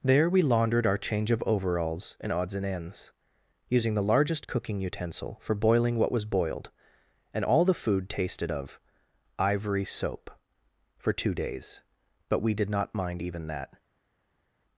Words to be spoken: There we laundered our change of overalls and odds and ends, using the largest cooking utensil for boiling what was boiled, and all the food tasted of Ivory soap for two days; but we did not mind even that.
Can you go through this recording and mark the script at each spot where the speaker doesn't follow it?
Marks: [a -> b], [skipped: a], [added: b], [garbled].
There we laundered our change of overalls and odds and ends, using the largest cooking utensil for boiling what was boiled, and all the food tasted of Ivory soap for two days; but we did not mind even that.